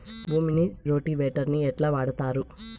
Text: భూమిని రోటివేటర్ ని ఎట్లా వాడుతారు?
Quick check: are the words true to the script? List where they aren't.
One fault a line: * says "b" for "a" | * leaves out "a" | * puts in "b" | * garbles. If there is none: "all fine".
all fine